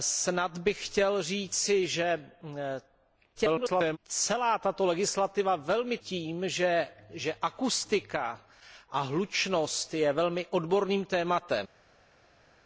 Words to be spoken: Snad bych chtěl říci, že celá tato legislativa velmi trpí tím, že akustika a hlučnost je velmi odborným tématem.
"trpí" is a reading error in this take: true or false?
true